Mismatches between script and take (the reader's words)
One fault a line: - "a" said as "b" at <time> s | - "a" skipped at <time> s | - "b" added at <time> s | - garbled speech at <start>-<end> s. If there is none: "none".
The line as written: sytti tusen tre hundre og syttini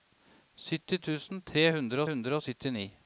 - "hundre" added at 2.1 s